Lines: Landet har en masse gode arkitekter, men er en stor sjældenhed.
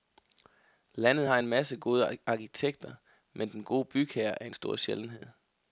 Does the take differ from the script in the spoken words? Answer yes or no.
yes